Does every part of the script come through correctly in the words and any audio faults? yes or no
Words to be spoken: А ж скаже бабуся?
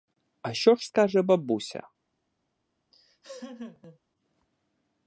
no